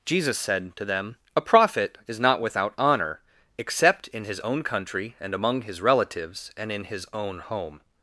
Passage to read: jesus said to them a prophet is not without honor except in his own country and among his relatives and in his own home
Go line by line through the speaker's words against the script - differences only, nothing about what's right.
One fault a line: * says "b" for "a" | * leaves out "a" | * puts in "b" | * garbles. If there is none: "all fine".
all fine